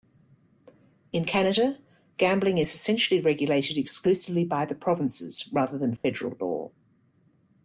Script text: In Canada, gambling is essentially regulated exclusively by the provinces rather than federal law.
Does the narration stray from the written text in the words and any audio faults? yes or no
yes